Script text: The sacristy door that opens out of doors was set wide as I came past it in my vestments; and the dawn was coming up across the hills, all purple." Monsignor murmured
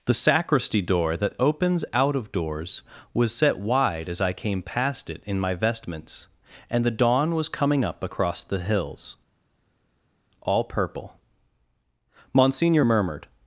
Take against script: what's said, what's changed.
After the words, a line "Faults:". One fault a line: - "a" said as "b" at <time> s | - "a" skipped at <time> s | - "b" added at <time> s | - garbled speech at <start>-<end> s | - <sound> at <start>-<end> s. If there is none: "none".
The sacristy door that opens out of doors was set wide as I came past it in my vestments; and the dawn was coming up across the hills, all purple." Monsignor murmured
Faults:
none